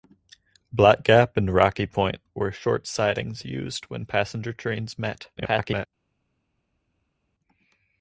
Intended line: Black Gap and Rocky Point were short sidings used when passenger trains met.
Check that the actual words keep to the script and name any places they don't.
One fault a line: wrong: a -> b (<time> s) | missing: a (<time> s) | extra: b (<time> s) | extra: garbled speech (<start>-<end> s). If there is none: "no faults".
extra: garbled speech (5.4-5.9 s)